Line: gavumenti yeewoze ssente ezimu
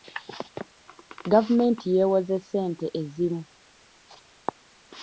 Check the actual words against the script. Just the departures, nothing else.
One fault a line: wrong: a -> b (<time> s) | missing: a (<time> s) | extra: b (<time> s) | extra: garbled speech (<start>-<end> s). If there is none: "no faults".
no faults